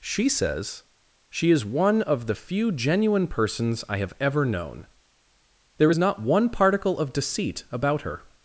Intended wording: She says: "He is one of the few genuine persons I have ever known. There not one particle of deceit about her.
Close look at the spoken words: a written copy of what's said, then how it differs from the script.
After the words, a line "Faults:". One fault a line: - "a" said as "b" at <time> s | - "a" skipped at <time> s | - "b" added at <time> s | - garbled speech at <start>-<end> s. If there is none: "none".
She says: "She is one of the few genuine persons I have ever known. There is not one particle of deceit about her.
Faults:
- "He" said as "She" at 1.3 s
- "is" added at 5.9 s